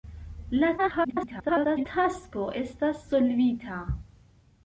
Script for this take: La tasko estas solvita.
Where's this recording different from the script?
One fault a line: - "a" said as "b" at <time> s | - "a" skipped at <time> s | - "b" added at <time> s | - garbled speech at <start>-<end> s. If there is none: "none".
- garbled speech at 0.8-1.9 s